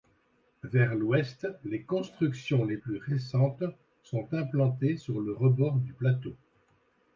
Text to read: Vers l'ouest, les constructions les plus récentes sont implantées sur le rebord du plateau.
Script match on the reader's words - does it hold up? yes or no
yes